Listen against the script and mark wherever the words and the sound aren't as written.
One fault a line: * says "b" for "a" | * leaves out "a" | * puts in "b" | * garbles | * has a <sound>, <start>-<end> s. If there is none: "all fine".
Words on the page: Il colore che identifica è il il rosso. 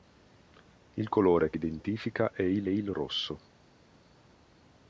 all fine